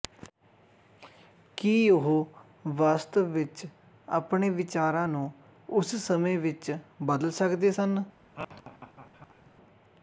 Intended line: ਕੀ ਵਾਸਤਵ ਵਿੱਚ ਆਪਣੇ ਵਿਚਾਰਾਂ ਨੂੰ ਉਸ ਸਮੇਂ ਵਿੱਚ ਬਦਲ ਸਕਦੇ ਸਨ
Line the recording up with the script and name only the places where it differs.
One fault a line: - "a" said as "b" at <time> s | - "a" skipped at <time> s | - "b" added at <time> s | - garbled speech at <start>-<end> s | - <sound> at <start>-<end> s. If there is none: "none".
- "ਉਹ" added at 1.9 s
- laugh at 8.4-9.5 s